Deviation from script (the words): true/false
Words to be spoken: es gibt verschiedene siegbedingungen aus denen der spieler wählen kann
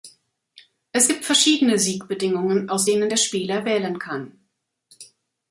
false